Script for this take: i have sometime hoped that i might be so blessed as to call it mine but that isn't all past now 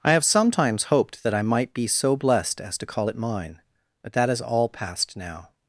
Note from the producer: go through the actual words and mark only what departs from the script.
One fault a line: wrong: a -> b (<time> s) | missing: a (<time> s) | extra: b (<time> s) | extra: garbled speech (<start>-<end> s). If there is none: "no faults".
wrong: sometime -> sometimes (0.2 s)
wrong: isn't -> is (4.3 s)